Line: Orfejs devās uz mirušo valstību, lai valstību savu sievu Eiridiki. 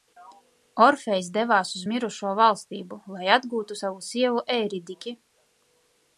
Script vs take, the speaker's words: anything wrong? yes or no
yes